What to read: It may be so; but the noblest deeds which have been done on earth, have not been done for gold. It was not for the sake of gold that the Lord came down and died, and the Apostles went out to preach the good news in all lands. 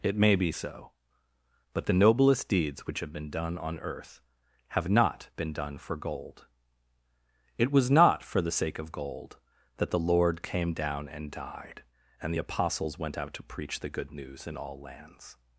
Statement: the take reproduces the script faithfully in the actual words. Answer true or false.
true